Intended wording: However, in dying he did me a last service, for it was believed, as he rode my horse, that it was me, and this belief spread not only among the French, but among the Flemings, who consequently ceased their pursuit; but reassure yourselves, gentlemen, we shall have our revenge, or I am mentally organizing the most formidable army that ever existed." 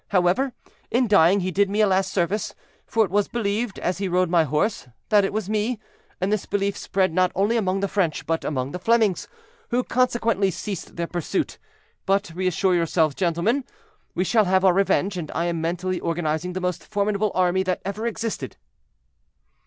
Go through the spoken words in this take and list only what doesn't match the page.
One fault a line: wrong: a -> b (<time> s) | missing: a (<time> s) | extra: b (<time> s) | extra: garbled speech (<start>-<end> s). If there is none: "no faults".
wrong: or -> and (15.2 s)